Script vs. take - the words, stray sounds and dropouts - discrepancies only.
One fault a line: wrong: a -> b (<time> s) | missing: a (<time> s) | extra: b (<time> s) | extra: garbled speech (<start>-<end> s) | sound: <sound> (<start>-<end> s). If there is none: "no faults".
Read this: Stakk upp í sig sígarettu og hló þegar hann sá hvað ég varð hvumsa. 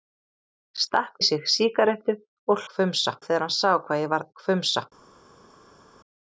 missing: upp (1.2 s)
wrong: hló -> hvumsa (2.7 s)